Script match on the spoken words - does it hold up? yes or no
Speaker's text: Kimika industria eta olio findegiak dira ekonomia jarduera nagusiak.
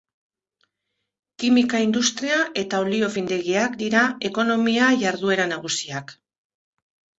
yes